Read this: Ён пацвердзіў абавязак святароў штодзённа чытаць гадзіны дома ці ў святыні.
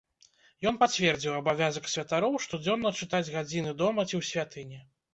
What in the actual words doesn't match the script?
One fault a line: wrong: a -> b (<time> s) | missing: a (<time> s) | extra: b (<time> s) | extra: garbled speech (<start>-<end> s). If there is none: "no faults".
no faults